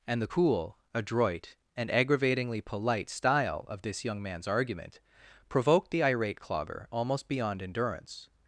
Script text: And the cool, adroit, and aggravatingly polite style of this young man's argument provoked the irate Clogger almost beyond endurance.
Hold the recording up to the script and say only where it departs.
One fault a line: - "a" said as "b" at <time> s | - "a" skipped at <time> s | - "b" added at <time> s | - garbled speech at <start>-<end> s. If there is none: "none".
none